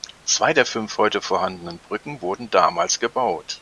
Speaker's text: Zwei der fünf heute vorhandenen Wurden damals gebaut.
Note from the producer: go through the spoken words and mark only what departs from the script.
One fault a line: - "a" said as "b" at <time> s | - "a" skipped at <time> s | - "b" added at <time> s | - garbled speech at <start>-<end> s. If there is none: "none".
- "Brücken" added at 1.8 s